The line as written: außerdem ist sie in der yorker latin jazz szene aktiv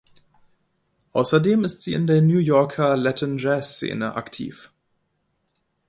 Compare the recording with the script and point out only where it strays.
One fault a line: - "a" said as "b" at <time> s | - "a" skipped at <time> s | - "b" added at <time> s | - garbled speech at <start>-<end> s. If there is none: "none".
- "new" added at 2.2 s